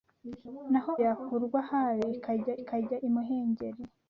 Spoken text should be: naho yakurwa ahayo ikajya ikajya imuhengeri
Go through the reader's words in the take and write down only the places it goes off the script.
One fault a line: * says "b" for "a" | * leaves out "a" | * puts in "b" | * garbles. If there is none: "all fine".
all fine